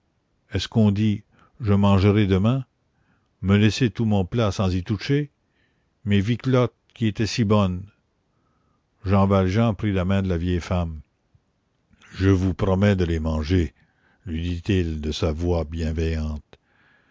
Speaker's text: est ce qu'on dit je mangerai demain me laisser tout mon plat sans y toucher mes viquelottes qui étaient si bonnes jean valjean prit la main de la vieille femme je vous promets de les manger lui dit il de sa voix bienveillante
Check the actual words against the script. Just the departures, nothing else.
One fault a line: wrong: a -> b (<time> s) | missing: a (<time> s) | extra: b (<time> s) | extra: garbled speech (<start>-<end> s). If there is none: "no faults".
no faults